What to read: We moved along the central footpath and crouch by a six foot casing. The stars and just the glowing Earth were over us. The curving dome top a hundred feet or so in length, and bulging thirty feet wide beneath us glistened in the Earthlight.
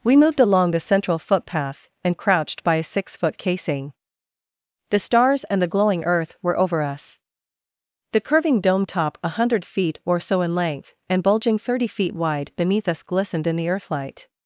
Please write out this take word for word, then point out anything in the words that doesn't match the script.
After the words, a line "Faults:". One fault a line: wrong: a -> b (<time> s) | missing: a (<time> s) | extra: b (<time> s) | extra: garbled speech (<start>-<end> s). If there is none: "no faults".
We moved along the central footpath and crouched by a six foot casing. The stars and the glowing Earth were over us. The curving dome top a hundred feet or so in length, and bulging thirty feet wide beneath us glistened in the Earthlight.
Faults:
wrong: crouch -> crouched (2.2 s)
missing: just (5.6 s)